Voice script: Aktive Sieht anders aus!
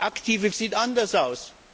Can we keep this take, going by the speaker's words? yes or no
yes